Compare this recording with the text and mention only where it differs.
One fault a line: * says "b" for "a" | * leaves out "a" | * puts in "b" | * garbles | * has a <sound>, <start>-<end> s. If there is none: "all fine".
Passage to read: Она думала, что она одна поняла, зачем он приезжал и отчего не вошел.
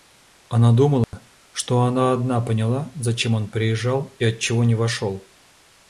* has a dropout, 1.0-1.1 s